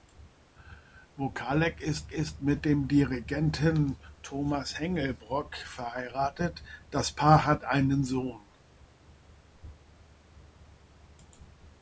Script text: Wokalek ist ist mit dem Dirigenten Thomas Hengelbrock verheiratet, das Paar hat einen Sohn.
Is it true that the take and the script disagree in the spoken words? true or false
false